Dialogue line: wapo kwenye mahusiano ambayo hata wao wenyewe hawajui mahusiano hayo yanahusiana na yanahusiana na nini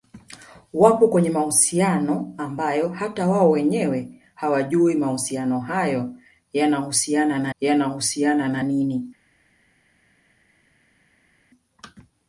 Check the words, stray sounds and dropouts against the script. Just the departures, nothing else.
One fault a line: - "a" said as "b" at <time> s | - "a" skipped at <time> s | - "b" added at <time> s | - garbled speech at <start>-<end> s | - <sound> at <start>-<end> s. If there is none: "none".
none